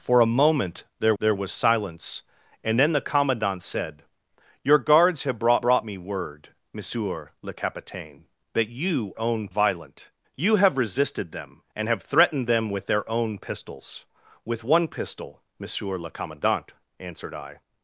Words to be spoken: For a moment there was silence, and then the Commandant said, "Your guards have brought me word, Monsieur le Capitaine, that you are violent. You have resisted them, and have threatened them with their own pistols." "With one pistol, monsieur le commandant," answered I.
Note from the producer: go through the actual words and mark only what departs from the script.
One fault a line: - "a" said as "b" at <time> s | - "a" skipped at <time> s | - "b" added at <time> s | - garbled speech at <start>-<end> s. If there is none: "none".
- "there" added at 1.2 s
- "brought" added at 5.6 s
- "are" said as "own" at 9.2 s